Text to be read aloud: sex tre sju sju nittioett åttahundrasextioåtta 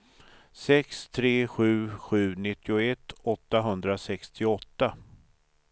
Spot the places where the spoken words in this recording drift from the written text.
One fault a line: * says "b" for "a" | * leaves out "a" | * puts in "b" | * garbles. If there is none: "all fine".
all fine